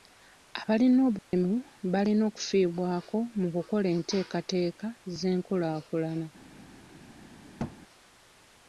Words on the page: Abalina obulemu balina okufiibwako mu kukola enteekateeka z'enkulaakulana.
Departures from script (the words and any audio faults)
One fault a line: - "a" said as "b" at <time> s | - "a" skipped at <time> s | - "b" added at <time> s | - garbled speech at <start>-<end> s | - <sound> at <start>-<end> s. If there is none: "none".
- dropout at 1.2-1.3 s
- thud at 7.6-7.8 s